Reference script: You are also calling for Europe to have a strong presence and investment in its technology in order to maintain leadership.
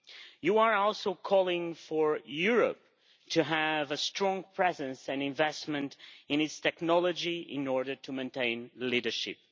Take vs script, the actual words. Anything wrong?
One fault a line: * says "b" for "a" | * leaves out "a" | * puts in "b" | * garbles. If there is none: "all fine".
all fine